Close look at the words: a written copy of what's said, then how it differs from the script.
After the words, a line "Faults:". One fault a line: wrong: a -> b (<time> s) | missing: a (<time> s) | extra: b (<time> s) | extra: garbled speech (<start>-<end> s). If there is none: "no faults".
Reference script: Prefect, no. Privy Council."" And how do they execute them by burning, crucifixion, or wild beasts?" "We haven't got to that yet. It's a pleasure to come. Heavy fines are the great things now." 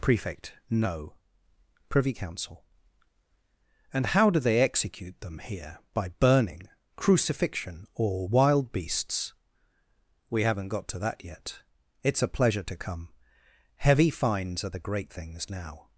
Prefect, no. Privy Council."" And how do they execute them here, by burning, crucifixion, or wild beasts?" "We haven't got to that yet. It's a pleasure to come. Heavy fines are the great things now."
Faults:
extra: here (5.4 s)